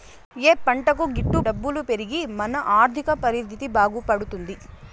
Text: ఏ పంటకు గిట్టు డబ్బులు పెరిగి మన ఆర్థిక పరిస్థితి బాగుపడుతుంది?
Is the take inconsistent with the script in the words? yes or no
no